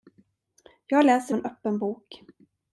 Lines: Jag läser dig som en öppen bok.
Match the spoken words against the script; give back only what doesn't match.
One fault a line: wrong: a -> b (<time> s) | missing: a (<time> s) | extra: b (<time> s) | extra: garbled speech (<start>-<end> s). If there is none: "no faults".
missing: dig som (1.4 s)